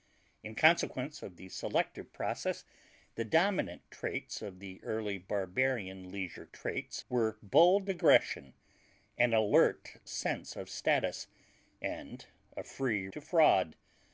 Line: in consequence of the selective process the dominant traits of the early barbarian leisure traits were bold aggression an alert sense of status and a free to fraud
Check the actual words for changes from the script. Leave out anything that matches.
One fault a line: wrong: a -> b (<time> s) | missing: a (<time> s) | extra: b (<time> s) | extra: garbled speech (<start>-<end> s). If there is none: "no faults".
no faults